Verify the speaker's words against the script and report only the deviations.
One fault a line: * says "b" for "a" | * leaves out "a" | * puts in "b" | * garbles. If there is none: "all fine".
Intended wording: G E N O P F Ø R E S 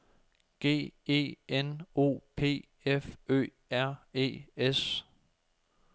all fine